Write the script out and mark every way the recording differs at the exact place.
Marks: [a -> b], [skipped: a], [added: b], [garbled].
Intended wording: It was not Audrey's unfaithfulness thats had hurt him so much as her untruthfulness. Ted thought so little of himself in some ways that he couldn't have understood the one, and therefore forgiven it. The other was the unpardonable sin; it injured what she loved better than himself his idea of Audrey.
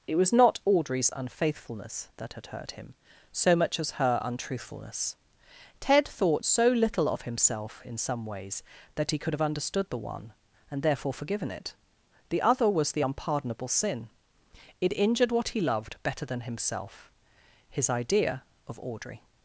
It was not Audrey's unfaithfulness [thats -> that] had hurt him so much as her untruthfulness. Ted thought so little of himself in some ways that he [couldn't -> could] have understood the one, and therefore forgiven it. The other was the unpardonable sin; it injured what [she -> he] loved better than himself his idea of Audrey.